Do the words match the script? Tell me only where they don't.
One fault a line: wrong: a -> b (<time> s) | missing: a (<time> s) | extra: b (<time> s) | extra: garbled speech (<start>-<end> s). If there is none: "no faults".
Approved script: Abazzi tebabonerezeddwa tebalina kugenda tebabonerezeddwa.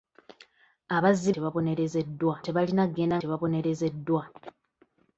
no faults